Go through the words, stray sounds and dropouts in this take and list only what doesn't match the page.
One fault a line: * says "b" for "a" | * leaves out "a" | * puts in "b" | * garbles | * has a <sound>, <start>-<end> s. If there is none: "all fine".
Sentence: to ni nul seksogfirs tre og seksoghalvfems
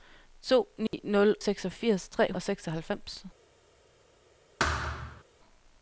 * has a dropout, 0.9-0.9 s
* has a thud, 4.6-5.2 s